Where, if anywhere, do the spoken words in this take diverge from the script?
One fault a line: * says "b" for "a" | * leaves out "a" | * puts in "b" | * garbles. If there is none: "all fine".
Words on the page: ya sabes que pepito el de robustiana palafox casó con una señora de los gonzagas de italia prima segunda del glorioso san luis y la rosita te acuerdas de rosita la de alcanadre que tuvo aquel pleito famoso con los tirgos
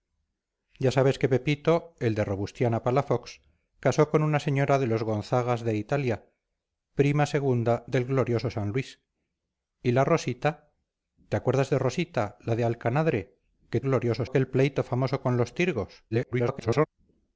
* says "glorioso" for "tuvo"
* garbles